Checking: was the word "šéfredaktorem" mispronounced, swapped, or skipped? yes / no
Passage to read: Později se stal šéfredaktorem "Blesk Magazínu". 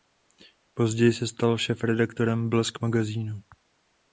no